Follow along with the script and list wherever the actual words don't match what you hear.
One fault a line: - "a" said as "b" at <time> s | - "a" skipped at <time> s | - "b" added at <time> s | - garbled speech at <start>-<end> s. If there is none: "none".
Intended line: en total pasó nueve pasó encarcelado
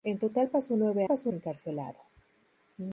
none